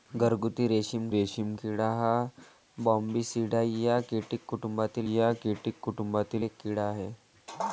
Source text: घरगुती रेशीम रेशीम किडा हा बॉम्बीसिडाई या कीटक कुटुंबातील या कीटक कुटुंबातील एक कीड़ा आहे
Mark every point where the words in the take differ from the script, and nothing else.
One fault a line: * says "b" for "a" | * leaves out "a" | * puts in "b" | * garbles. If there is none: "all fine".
all fine